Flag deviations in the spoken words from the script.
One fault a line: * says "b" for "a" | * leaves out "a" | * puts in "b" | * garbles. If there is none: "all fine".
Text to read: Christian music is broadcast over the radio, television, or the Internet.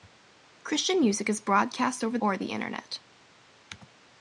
* leaves out "the radio television"